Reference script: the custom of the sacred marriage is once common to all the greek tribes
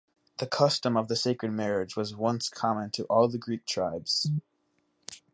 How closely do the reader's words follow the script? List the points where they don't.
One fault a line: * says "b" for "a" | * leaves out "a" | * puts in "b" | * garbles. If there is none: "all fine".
* says "was" for "is"